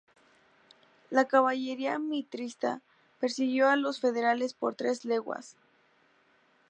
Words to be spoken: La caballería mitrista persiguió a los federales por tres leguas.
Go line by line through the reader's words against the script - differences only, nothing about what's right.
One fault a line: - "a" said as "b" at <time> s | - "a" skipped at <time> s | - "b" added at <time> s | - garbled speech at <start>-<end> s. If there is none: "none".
none